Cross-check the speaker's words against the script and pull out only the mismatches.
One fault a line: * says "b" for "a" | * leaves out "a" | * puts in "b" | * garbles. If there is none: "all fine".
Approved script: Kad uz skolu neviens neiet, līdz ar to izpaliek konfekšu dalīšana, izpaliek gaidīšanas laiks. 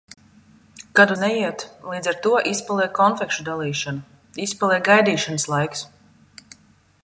* leaves out "uz skolu neviens"